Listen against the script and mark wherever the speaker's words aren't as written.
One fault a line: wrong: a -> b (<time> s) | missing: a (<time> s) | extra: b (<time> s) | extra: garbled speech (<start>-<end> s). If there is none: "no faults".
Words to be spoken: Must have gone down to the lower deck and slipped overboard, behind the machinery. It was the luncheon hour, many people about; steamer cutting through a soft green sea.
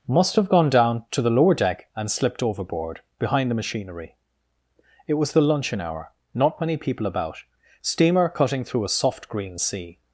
extra: not (6.3 s)